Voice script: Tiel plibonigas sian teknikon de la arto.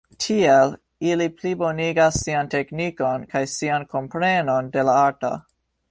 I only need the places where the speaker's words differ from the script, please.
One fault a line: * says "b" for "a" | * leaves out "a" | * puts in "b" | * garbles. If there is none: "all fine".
* puts in "ili"
* puts in "kaj sian komprenon"